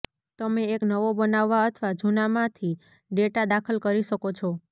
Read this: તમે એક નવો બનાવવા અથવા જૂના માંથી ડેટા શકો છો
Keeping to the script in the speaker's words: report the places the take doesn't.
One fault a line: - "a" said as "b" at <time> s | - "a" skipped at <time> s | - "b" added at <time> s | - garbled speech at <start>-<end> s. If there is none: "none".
- "દાખલ કરી" added at 3.5 s